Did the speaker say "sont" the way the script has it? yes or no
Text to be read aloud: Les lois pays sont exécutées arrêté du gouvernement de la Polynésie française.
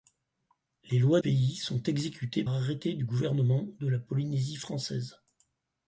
yes